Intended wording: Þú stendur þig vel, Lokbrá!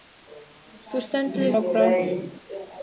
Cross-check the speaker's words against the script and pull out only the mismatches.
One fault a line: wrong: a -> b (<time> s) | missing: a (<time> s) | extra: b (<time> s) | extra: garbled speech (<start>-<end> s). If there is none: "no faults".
missing: vel (1.5 s)